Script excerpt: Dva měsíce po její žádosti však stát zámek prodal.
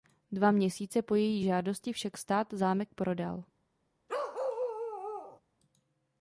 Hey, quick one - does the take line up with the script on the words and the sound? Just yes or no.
no